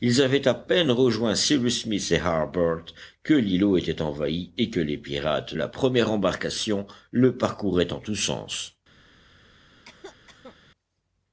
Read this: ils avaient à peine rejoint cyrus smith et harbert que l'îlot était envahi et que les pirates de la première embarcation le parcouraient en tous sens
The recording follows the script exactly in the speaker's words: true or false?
false